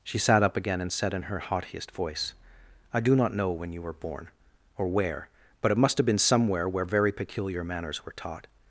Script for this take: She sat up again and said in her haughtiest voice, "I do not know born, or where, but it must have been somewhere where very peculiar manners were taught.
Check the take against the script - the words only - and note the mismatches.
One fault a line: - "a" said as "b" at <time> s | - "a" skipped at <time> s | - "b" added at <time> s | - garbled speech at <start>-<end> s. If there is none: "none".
- "when you were" added at 3.5 s